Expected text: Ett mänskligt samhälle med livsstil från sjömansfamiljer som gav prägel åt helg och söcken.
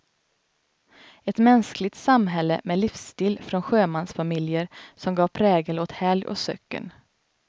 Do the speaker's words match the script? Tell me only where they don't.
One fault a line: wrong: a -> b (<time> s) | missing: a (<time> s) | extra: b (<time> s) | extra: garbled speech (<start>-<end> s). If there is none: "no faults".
no faults